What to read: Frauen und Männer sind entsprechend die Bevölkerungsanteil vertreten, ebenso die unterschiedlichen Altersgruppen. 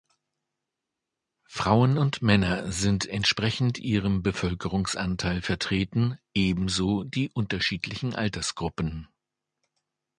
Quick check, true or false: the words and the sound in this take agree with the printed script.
false